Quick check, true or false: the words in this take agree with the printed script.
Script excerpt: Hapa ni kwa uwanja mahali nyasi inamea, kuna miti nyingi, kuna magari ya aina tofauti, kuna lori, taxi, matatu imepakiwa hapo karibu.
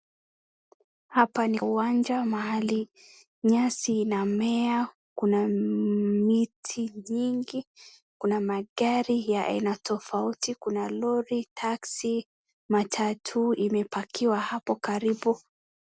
false